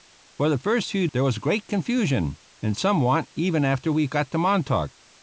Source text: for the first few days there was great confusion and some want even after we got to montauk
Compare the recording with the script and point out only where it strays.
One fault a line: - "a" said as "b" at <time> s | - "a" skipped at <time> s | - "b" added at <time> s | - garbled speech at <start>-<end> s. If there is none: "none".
- "days" skipped at 1.1 s